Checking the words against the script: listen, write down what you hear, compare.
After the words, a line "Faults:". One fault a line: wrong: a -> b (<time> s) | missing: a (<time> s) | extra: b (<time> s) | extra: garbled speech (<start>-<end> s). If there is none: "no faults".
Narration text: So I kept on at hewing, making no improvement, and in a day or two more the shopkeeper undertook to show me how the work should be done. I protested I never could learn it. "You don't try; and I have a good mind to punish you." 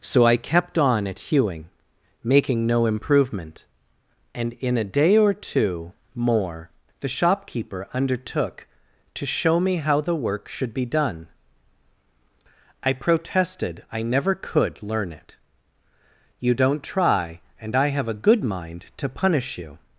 So I kept on at hewing, making no improvement, and in a day or two more the shopkeeper undertook to show me how the work should be done. I protested I never could learn it. "You don't try; and I have a good mind to punish you."
Faults:
no faults